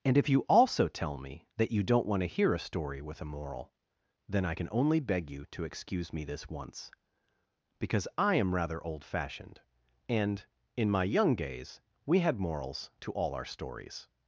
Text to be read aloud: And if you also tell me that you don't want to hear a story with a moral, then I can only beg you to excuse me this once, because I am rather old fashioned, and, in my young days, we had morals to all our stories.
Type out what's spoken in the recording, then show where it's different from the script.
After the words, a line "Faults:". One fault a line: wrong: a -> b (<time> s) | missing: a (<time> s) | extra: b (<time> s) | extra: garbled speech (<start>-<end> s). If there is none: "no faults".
And if you also tell me that you don't want to hear a story with a moral, then I can only beg you to excuse me this once, because I am rather old fashioned, and, in my young days, we had morals to all our stories.
Faults:
no faults